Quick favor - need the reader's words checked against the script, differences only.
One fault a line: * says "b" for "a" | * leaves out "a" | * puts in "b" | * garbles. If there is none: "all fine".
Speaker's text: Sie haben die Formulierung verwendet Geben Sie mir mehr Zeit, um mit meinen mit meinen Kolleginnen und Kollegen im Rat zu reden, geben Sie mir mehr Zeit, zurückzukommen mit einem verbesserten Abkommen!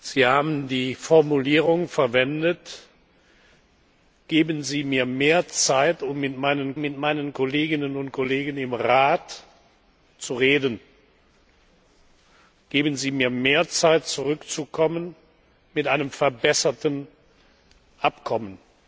all fine